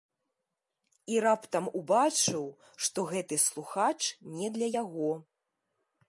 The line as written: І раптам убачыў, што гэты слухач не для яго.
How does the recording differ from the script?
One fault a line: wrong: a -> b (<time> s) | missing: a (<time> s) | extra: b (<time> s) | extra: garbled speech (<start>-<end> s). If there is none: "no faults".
no faults